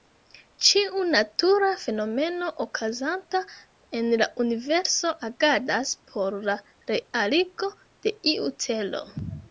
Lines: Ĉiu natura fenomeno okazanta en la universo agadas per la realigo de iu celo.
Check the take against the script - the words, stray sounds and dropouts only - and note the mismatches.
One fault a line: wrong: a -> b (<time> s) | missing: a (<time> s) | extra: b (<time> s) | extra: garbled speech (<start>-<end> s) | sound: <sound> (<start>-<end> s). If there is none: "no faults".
wrong: per -> por (6.1 s)